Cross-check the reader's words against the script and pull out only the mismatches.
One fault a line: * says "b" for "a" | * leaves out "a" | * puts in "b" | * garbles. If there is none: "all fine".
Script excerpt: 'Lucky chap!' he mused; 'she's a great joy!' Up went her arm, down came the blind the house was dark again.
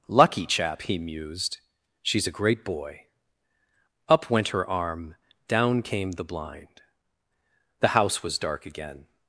* says "boy" for "joy"